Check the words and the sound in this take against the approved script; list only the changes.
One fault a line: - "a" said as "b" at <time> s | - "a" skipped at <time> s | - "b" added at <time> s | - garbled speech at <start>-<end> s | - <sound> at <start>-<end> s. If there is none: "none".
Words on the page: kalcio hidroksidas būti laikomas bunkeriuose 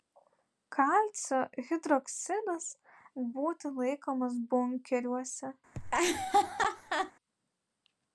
- laugh at 5.7-7.1 s